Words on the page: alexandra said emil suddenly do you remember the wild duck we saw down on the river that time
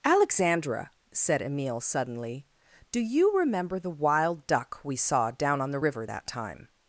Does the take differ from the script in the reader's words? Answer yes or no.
no